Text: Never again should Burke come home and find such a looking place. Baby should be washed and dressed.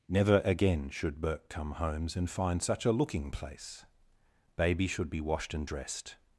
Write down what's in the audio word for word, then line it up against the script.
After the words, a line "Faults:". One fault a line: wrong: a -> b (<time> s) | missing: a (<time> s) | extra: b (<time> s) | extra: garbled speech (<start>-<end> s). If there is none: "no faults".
Never again should Burke come homes and find such a looking place. Baby should be washed and dressed.
Faults:
wrong: home -> homes (1.7 s)